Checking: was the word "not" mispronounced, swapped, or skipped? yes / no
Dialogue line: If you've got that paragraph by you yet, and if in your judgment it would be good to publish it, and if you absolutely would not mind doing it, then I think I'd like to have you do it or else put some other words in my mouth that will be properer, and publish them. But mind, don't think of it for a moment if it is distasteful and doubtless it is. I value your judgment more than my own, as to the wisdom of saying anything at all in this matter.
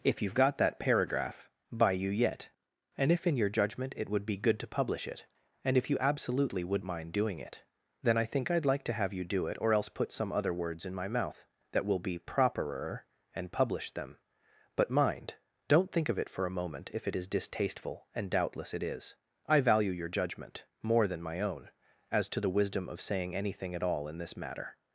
yes